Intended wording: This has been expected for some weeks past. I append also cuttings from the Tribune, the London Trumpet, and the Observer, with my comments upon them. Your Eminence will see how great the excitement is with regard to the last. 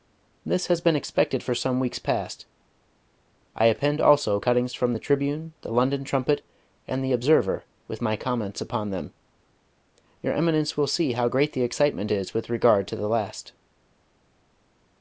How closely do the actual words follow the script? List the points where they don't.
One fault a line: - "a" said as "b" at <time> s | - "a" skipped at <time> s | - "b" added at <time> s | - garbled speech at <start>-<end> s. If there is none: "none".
none